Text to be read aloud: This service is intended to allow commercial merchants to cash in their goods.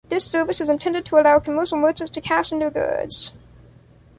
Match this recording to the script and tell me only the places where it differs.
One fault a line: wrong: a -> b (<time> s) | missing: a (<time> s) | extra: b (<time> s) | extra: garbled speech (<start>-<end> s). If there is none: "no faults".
no faults